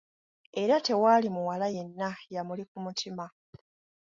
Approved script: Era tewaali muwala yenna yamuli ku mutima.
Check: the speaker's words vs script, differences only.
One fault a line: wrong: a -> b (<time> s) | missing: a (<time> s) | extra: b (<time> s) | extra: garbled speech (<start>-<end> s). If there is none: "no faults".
no faults